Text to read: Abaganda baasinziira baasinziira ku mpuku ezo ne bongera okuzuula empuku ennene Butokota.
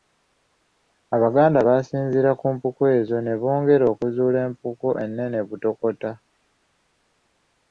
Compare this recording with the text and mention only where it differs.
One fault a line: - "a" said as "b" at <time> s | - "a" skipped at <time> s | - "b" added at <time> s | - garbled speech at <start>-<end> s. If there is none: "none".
- "baasinziira" skipped at 2.3 s